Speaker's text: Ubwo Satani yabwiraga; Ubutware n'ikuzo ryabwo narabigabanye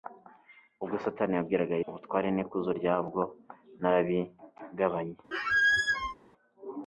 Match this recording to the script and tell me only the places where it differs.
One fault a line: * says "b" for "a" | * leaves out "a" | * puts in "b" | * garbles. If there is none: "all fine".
all fine